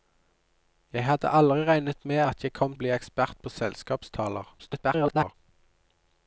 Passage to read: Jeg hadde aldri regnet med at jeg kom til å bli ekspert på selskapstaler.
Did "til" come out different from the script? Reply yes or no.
yes